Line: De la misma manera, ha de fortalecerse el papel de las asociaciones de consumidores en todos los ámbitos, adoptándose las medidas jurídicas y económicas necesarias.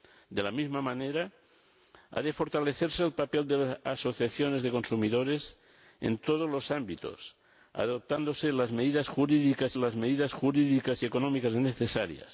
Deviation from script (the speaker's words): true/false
true